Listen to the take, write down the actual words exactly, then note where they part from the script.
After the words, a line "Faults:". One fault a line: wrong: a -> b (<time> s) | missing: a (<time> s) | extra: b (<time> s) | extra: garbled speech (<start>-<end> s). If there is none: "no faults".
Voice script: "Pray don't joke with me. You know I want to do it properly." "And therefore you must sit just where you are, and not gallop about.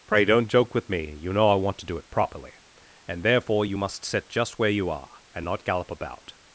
"Pray don't joke with me. You know I want to do it properly." "And therefore you must sit just where you are, and not gallop about.
Faults:
no faults